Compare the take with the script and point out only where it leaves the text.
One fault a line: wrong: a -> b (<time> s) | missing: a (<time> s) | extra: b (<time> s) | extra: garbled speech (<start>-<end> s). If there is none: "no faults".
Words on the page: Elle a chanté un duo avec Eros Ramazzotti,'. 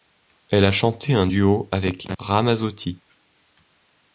missing: Eros (2.1 s)